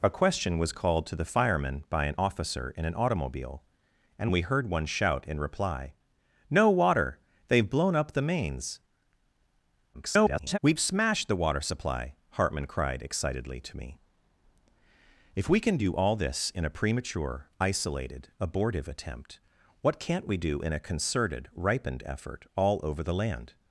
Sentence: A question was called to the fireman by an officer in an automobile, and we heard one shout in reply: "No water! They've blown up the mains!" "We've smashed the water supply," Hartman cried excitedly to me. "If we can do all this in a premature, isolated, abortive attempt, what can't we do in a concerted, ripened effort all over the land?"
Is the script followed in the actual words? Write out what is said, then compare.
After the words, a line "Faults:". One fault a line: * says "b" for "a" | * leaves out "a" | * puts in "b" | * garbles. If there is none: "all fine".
A question was called to the fireman by an officer in an automobile, and we heard one shout in reply: "No water! They've blown up the mains!" [garbled] "We've smashed the water supply," Hartman cried excitedly to me. "If we can do all this in a premature, isolated, abortive attempt, what can't we do in a concerted, ripened effort all over the land?"
Faults:
* garbles